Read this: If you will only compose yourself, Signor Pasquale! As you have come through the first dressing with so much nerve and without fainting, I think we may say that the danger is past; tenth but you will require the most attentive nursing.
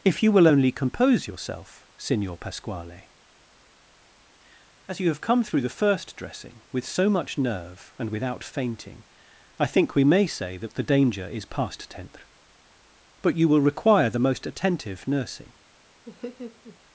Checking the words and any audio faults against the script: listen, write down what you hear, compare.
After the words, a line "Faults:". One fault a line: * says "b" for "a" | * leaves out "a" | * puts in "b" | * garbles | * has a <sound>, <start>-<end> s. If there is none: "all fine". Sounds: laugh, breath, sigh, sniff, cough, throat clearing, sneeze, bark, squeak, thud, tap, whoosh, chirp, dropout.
If you will only compose yourself, Signor Pasquale! As you have come through the first dressing with so much nerve and without fainting, I think we may say that the danger is past; tenth but you will require the most attentive nursing.
Faults:
* has a laugh, 16.0-16.8 s